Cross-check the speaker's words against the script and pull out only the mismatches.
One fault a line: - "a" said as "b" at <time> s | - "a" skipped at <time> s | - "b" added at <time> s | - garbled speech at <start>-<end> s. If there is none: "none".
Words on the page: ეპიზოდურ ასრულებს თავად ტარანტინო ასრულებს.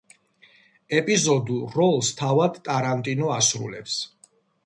- "ასრულებს" said as "როლს" at 1.8 s